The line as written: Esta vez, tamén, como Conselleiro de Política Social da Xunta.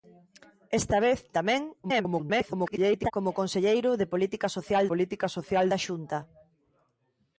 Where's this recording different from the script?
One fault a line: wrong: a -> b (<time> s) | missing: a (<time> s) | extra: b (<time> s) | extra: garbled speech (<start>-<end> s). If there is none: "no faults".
extra: garbled speech (1.8-3.1 s)
extra: Política Social (4.9 s)